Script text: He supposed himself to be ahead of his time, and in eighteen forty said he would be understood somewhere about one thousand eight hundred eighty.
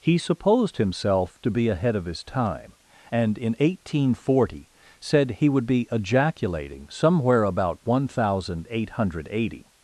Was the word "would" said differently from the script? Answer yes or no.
no